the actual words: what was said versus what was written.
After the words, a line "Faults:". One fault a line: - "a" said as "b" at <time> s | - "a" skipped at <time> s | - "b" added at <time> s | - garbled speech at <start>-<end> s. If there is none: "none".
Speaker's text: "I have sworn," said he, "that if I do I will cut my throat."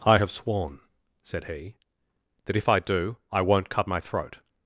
"I have sworn," said he, "that if I do I won't cut my throat."
Faults:
- "will" said as "won't" at 3.4 s